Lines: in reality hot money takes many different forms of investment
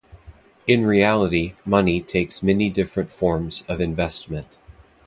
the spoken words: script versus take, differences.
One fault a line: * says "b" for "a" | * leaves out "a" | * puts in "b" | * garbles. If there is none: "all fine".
* leaves out "hot"